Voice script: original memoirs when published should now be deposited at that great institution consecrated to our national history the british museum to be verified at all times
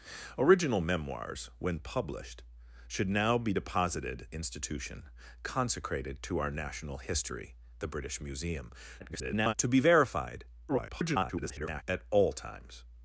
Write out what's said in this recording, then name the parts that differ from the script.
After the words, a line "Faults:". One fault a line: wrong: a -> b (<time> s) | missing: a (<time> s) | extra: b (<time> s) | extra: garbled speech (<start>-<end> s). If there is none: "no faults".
original memoirs when published should now be deposited institution consecrated to our national history the british museum [garbled] to be verified [garbled] at all times
Faults:
missing: at that great (4.3 s)
extra: garbled speech (9.0-9.5 s)
extra: garbled speech (10.7-11.8 s)